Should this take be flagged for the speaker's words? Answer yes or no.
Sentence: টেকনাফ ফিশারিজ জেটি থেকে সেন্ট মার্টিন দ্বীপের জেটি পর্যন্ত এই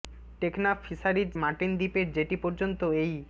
yes